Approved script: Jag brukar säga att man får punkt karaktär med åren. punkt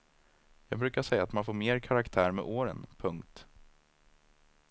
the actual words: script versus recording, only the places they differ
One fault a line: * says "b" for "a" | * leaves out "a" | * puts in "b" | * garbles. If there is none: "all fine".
* says "mer" for "punkt"